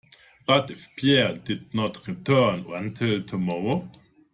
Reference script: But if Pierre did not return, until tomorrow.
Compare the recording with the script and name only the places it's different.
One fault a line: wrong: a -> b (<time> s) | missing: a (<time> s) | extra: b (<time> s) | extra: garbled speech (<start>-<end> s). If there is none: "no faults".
no faults